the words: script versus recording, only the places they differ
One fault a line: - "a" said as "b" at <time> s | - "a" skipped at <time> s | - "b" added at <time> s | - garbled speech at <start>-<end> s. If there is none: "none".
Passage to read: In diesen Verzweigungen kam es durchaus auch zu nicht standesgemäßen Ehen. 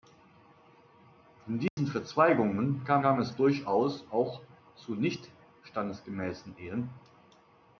- "kam" added at 3.0 s